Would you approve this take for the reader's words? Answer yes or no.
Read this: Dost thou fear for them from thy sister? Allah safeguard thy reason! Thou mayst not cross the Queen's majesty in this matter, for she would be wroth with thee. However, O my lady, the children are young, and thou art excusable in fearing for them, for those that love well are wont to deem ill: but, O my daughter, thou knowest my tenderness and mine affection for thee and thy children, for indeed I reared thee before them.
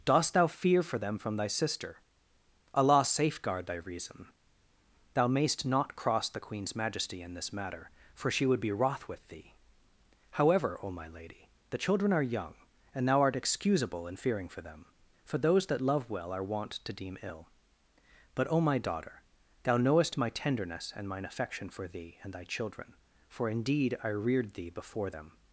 yes